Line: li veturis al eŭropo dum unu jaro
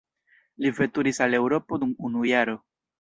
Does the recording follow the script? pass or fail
pass